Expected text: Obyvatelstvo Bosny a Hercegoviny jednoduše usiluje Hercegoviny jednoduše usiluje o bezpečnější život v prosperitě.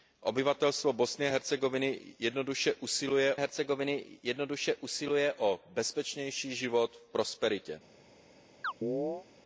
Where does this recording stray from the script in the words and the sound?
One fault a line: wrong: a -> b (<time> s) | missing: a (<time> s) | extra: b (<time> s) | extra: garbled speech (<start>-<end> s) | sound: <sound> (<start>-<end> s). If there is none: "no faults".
sound: chirp (8.6-9.3 s)